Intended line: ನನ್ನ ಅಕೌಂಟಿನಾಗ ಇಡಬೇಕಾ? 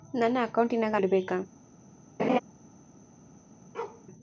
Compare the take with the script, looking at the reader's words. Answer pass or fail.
pass